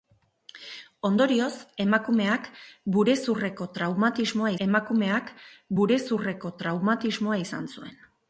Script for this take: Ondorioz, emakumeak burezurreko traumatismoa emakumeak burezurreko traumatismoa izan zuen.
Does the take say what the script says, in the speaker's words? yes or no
yes